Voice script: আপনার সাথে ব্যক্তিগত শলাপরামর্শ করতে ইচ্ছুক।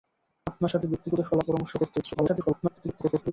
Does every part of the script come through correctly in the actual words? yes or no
no